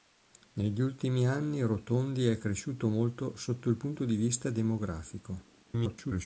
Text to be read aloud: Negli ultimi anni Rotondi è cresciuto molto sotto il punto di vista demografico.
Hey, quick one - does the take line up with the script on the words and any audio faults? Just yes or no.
no